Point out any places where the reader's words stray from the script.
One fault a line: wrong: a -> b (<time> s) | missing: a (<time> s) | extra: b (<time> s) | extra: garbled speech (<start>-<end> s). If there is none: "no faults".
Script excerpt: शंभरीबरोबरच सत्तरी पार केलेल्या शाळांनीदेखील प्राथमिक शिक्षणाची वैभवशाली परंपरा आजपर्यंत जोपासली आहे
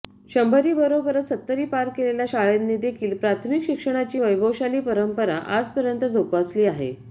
no faults